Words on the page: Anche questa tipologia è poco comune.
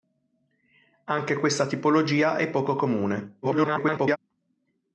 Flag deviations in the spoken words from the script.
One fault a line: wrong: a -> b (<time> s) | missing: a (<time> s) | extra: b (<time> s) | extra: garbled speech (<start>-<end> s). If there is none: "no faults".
extra: garbled speech (3.4-4.2 s)